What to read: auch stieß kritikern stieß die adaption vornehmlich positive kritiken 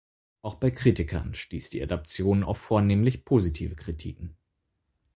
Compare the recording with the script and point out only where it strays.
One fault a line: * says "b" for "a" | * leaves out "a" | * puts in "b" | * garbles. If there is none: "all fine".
* says "bei" for "stieß"
* puts in "auf"